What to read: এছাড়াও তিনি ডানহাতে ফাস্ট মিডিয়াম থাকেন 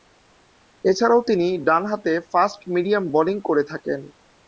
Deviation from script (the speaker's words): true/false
true